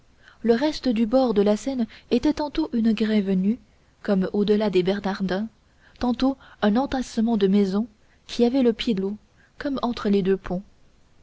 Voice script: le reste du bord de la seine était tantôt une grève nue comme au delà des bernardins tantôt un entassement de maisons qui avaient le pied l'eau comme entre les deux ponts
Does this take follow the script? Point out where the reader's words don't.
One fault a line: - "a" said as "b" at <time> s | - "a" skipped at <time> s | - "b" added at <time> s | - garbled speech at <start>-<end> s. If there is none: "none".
none